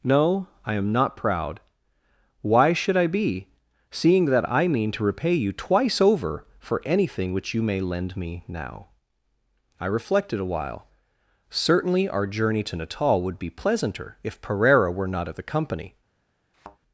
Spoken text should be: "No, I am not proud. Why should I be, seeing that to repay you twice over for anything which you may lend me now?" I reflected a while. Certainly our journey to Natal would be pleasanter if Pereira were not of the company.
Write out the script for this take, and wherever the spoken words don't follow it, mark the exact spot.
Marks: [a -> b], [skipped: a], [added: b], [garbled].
"No, I am not proud. Why should I be, seeing that [added: I mean] to repay you twice over for anything which you may lend me now?" I reflected a while. Certainly our journey to Natal would be pleasanter if Pereira were not of the company.